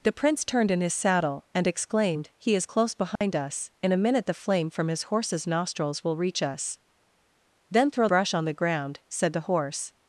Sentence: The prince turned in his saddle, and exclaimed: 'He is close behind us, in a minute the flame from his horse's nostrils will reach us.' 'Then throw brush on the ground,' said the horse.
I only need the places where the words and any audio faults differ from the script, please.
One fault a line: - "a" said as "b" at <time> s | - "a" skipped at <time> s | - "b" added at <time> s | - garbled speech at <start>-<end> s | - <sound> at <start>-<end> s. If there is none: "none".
- dropout at 3.2-3.2 s